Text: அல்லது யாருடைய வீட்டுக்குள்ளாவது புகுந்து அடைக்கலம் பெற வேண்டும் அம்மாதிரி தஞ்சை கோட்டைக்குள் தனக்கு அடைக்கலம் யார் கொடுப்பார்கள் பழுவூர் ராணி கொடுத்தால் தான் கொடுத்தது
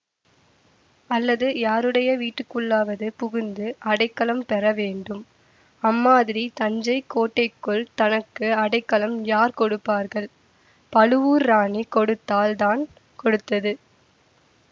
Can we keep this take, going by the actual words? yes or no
yes